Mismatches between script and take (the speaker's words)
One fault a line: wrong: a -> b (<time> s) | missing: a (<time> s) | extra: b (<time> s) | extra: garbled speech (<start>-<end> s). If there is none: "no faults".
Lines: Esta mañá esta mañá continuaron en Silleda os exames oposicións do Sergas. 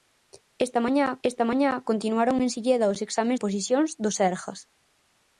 no faults